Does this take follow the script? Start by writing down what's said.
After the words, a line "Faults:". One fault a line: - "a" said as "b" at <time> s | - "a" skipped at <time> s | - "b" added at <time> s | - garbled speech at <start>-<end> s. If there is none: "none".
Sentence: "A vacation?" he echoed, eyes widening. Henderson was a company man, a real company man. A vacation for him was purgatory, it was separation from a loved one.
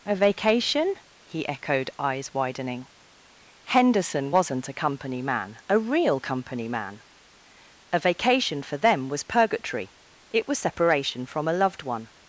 "A vacation?" he echoed, eyes widening. Henderson wasn't a company man, a real company man. A vacation for them was purgatory, it was separation from a loved one.
Faults:
- "was" said as "wasn't" at 4.3 s
- "him" said as "them" at 8.8 s